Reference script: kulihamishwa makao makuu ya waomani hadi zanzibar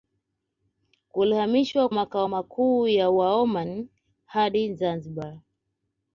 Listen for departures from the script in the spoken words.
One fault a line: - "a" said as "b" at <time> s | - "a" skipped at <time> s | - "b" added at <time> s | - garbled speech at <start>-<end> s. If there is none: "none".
none